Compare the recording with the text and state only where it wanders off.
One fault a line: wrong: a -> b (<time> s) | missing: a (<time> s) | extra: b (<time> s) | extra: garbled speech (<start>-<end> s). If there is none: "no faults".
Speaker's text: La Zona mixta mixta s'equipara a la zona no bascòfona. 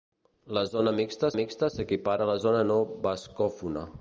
no faults